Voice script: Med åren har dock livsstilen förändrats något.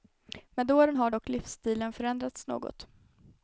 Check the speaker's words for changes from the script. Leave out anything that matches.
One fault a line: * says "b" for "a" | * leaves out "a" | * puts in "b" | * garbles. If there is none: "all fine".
all fine